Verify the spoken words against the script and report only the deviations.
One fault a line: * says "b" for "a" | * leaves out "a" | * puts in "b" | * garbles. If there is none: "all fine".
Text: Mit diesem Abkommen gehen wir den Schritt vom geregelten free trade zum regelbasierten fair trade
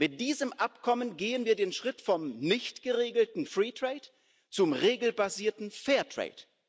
* puts in "nicht"